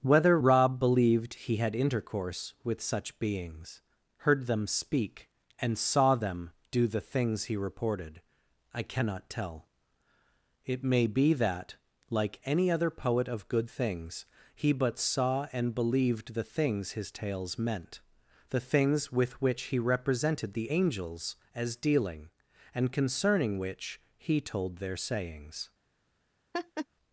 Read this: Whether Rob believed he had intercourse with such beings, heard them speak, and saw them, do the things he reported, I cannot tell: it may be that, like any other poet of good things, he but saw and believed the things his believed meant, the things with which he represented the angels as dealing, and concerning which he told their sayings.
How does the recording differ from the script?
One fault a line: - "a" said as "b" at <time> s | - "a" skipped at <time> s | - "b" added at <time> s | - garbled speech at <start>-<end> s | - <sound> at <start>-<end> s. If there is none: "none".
- "believed" said as "tales" at 17.1 s
- laugh at 26.5-26.9 s